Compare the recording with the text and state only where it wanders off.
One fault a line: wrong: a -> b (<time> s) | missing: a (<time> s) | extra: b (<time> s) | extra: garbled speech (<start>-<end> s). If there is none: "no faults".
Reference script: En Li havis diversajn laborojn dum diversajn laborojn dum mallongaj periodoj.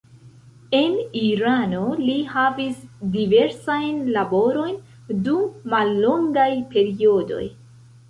extra: Irano (1.2 s)
missing: diversajn laborojn dum (5.4 s)